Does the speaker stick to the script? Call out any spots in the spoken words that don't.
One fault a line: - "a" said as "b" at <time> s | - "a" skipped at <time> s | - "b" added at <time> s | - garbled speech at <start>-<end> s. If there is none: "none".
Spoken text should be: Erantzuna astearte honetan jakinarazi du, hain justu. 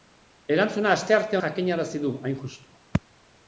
- "honetan" skipped at 1.4 s